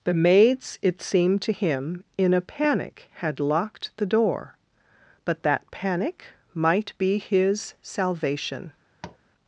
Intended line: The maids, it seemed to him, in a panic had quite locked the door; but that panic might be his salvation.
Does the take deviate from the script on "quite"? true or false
true